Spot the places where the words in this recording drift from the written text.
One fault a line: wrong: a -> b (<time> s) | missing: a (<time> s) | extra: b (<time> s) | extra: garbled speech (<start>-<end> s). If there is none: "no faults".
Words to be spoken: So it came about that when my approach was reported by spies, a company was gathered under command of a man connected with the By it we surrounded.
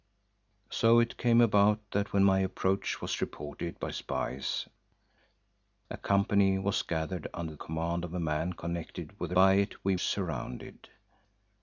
no faults